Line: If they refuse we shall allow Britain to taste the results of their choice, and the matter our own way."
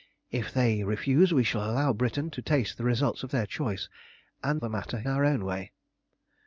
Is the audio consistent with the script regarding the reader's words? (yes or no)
yes